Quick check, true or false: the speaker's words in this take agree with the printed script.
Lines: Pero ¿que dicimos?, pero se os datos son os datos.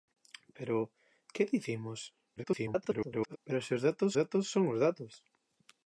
false